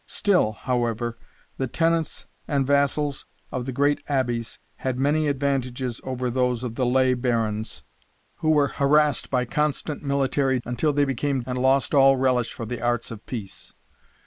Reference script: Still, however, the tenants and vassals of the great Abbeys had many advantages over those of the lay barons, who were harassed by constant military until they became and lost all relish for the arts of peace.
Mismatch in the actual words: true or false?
false